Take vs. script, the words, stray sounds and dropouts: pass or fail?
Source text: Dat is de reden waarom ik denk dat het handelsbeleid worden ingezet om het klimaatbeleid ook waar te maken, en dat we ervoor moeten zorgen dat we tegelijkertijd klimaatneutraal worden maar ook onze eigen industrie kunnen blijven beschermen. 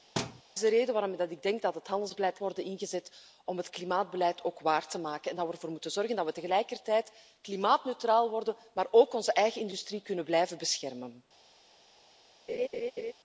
fail